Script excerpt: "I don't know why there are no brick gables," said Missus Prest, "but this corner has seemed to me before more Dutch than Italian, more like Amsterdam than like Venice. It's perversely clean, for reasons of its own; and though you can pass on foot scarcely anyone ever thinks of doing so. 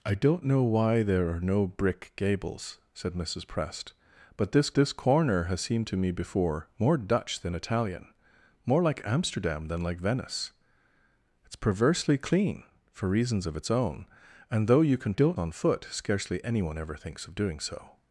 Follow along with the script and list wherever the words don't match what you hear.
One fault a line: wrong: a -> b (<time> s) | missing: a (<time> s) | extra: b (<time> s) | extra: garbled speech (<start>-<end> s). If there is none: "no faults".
extra: this (4.7 s)
wrong: pass -> don't (15.1 s)